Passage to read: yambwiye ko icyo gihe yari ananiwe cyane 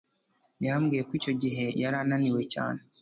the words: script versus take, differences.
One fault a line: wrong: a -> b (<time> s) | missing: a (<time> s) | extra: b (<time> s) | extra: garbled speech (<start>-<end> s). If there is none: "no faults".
no faults